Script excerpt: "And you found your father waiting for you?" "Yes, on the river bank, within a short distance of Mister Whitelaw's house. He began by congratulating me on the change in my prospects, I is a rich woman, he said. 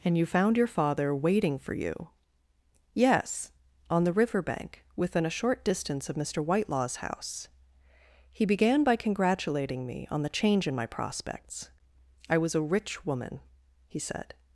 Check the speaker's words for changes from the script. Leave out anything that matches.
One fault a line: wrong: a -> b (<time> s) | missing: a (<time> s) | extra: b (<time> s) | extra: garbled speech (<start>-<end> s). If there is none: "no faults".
wrong: is -> was (12.4 s)